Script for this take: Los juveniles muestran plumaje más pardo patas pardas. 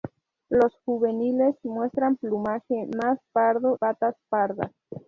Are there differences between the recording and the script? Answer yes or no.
no